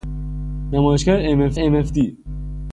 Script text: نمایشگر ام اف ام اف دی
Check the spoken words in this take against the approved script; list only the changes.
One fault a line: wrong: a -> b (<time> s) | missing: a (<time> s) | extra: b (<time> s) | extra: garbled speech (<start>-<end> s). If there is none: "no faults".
no faults